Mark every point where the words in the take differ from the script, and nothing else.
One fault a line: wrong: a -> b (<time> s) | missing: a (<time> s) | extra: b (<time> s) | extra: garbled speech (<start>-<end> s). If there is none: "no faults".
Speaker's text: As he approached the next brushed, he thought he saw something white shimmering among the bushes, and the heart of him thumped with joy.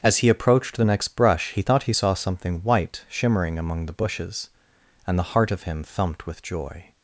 wrong: brushed -> brush (1.1 s)